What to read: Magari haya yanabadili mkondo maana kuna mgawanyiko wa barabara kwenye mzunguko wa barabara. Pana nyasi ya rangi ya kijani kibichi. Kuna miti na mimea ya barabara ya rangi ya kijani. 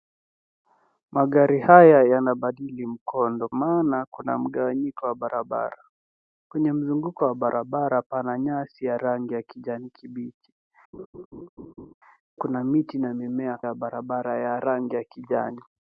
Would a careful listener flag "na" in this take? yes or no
no